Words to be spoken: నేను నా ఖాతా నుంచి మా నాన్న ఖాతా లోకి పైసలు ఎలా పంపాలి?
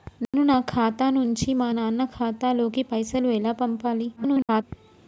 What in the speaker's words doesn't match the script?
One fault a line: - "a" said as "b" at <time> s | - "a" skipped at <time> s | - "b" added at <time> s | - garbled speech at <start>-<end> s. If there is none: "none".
- garbled speech at 4.2-4.6 s